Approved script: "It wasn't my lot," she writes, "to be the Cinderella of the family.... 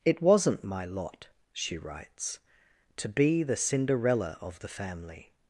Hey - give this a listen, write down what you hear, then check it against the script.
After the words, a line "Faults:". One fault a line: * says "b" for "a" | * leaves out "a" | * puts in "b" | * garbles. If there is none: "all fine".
"It wasn't my lot," she writes, "to be the Cinderella of the family....
Faults:
all fine